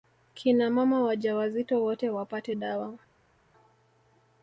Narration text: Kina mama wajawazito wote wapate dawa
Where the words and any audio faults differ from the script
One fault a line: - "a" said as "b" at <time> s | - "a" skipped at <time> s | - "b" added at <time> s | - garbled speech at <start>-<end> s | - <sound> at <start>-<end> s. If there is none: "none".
none